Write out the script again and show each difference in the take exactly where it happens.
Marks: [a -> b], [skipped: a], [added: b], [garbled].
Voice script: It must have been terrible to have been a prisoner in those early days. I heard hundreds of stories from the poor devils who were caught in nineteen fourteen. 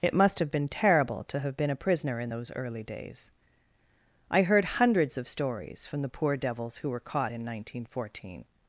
It must have been terrible to have been a prisoner in those early days. I heard hundreds of stories from the poor devils who were caught in nineteen fourteen.